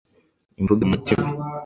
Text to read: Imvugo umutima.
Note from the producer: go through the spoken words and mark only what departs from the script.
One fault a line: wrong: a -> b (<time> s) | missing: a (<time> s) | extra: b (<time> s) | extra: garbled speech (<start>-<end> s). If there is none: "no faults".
no faults